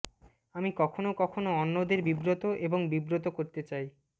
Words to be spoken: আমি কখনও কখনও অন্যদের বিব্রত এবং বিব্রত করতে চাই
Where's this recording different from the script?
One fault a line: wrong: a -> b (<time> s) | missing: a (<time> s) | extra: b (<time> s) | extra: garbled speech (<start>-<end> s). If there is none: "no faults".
no faults